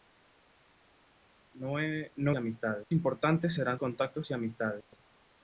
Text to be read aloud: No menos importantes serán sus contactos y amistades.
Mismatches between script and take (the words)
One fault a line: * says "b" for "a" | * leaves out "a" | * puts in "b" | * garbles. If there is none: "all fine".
* says "amistades" for "menos"
* leaves out "sus"